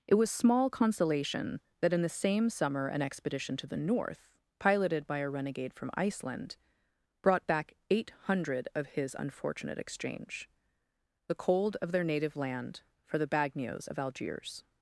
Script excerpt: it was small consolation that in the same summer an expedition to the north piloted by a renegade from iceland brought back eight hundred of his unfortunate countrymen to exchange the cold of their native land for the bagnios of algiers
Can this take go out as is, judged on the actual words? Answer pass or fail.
fail